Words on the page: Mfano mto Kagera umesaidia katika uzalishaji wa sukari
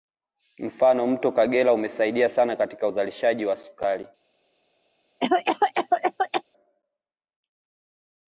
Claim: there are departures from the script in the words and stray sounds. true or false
true